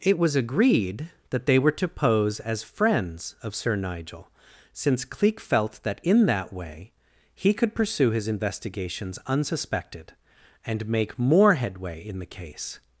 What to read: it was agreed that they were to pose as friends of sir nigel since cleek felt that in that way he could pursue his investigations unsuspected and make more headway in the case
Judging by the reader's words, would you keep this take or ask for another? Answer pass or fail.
pass